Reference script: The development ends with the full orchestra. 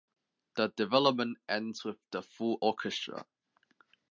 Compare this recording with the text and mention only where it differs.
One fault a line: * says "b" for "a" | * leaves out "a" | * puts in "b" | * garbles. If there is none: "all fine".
all fine